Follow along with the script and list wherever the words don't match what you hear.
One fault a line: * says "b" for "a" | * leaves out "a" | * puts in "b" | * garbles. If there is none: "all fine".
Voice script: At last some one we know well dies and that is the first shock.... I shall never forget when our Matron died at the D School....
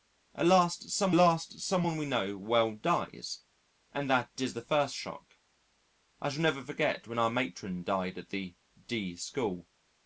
* puts in "last some"